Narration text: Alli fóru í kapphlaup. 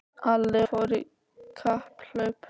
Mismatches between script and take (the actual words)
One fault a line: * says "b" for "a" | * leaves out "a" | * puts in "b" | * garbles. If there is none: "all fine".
all fine